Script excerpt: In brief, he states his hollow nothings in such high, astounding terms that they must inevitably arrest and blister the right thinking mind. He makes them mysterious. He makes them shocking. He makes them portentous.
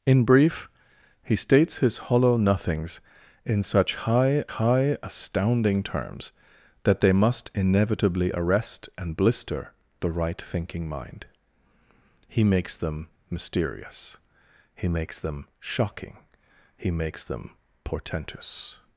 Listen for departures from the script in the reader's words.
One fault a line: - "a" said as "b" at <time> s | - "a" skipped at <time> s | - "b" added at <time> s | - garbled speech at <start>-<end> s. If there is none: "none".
- "high" added at 4.5 s